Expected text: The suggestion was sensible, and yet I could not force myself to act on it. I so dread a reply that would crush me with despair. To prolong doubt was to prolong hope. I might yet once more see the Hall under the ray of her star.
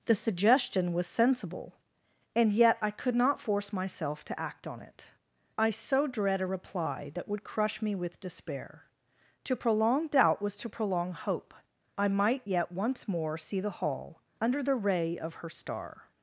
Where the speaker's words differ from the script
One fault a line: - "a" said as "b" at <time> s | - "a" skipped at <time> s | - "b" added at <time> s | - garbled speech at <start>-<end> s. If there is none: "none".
none